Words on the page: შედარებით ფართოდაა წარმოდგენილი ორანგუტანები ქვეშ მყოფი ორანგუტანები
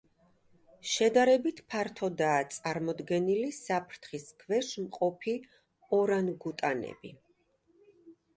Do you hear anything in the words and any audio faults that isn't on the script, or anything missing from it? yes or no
yes